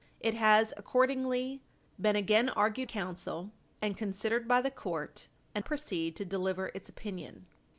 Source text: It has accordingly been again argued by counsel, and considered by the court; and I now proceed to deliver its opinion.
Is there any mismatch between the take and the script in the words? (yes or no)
yes